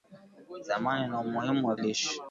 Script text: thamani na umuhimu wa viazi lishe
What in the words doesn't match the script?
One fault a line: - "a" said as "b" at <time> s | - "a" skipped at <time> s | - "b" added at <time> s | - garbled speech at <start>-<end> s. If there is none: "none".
- "viazi" skipped at 1.8 s